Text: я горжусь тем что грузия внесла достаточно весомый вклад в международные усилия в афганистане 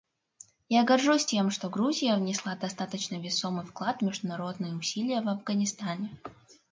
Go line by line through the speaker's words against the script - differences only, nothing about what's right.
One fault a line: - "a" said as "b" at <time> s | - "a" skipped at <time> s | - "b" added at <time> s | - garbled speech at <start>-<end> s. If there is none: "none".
none